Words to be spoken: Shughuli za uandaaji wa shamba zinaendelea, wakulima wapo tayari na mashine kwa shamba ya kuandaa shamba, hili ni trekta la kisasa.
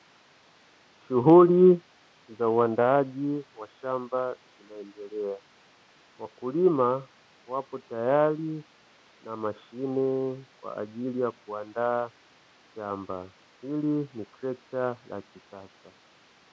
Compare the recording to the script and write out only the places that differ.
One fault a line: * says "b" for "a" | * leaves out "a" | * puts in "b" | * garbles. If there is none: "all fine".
* says "ajili" for "shamba"